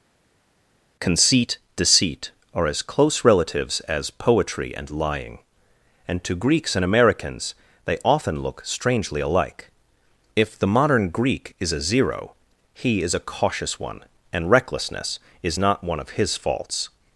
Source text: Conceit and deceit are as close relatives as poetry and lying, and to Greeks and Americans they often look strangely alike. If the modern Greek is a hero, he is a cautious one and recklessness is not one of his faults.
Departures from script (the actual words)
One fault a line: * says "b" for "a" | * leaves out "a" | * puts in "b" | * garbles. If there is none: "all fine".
* leaves out "and"
* says "zero" for "hero"